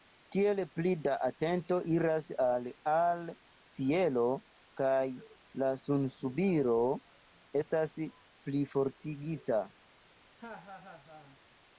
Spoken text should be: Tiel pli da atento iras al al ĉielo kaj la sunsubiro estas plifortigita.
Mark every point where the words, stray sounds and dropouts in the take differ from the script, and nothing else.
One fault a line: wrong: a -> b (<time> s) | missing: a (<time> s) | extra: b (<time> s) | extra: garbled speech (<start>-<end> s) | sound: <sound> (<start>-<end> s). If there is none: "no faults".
sound: laugh (10.4-11.4 s)